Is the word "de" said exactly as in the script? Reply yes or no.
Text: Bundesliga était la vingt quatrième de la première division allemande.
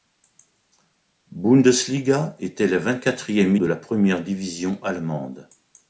yes